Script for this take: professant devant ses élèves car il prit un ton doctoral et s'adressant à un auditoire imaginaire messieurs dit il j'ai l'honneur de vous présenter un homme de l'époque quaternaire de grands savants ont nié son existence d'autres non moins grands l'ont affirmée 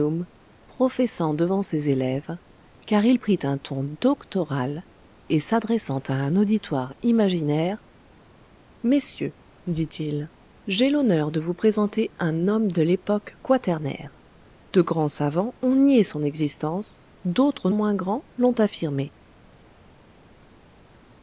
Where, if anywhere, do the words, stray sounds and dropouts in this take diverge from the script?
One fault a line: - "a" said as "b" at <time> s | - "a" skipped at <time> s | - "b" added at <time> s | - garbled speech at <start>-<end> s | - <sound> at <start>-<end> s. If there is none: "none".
- "non" skipped at 17.7 s